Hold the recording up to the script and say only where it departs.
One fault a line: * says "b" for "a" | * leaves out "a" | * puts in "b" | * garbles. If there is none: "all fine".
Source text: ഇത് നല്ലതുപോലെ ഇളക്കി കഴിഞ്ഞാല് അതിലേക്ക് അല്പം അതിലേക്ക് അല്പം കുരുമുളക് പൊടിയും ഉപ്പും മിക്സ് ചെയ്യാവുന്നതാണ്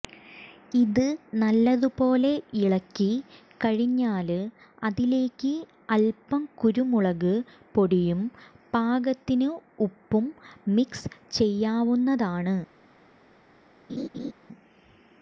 * leaves out "അതിലേക്ക് അല്പം"
* puts in "പാകത്തിന്"